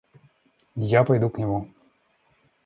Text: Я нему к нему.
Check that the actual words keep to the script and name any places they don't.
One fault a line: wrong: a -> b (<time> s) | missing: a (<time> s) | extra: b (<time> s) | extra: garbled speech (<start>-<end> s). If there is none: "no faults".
wrong: нему -> пойду (1.0 s)